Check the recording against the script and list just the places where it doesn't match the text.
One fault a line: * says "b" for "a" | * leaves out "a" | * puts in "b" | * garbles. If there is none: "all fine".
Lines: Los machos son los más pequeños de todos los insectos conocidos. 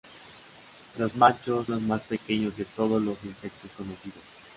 * leaves out "son"